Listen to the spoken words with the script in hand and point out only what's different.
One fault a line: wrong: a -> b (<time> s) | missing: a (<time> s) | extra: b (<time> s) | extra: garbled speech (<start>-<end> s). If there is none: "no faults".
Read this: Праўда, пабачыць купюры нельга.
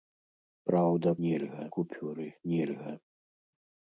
wrong: пабачыць -> нельга (1.3 s)